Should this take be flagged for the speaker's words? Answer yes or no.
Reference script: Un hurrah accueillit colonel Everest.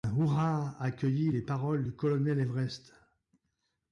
yes